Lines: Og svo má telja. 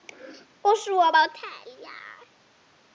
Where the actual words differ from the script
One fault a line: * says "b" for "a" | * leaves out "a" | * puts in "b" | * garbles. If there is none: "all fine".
all fine